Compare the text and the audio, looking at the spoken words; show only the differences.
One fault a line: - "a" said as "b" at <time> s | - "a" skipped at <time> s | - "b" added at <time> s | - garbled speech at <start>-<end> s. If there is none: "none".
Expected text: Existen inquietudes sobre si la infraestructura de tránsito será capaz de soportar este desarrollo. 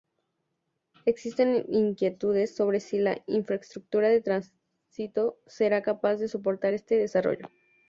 none